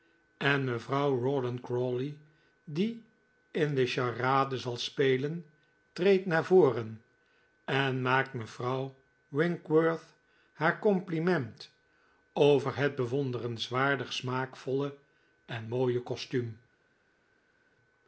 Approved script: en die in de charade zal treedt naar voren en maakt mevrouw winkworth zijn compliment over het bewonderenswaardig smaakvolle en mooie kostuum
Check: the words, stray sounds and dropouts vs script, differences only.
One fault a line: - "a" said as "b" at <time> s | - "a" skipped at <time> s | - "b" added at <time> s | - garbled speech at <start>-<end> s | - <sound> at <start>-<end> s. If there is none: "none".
- "mevrouw rawdon crawley" added at 0.6 s
- "spelen" added at 4.8 s
- "zijn" said as "haar" at 10.5 s